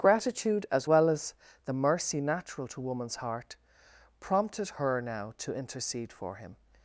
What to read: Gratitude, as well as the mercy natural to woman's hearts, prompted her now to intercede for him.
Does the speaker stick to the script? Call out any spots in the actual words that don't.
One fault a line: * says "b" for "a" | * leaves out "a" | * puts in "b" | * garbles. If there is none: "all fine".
* says "heart" for "hearts"